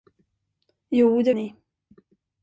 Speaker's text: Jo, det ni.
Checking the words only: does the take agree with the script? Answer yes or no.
yes